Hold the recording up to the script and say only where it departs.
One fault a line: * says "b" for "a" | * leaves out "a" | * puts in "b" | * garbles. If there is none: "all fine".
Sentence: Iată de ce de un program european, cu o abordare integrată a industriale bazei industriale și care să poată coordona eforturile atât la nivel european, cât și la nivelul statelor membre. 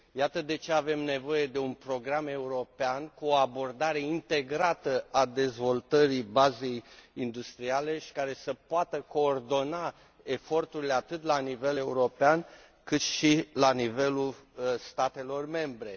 * puts in "avem nevoie"
* says "dezvoltării" for "industriale"